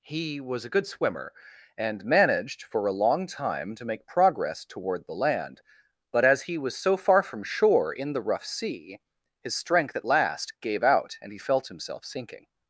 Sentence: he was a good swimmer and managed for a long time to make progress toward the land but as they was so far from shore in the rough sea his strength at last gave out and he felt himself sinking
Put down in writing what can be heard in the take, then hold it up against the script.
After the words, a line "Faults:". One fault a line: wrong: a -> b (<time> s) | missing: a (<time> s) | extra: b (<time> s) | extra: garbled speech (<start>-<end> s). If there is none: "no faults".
he was a good swimmer and managed for a long time to make progress toward the land but as he was so far from shore in the rough sea his strength at last gave out and he felt himself sinking
Faults:
wrong: they -> he (6.4 s)